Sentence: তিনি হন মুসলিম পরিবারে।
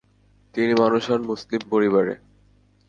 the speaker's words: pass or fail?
fail